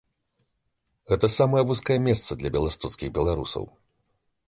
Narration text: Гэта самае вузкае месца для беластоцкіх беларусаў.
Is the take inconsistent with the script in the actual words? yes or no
no